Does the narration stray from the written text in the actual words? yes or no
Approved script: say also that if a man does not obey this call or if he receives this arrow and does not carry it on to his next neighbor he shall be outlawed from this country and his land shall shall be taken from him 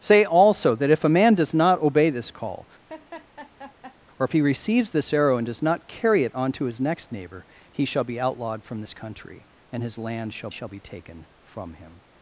no